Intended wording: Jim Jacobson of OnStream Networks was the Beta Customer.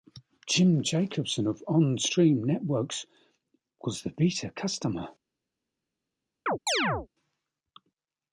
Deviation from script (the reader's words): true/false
false